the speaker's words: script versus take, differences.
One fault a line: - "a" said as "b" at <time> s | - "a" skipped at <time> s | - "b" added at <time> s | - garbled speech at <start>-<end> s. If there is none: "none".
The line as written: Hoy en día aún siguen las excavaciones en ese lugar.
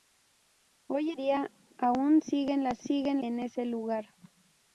- "en" skipped at 1.1 s
- "excavaciones" said as "siguen" at 2.8 s